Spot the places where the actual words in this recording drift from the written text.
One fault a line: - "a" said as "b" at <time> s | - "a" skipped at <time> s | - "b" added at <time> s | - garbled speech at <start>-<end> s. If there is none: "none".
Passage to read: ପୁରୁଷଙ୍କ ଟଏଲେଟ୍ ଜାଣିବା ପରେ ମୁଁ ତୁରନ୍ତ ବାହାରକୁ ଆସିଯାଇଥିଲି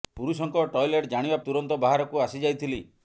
- "ପରେ ମୁଁ" skipped at 1.4 s